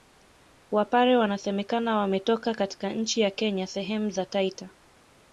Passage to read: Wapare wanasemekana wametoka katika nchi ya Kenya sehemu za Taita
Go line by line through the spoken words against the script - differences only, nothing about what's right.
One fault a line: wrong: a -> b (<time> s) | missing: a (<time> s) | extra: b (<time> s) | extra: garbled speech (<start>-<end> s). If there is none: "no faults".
no faults